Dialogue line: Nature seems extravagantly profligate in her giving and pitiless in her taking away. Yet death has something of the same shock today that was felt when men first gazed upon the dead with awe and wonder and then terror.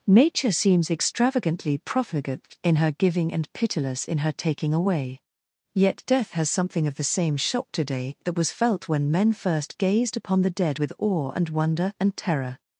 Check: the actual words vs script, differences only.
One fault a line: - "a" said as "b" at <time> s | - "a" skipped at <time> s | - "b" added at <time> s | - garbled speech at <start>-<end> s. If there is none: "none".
- "then" skipped at 12.1 s